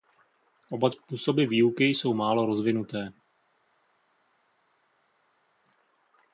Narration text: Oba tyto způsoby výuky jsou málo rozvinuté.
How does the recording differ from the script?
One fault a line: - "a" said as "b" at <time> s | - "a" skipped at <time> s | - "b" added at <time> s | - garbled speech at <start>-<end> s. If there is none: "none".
- "tyto" skipped at 0.9 s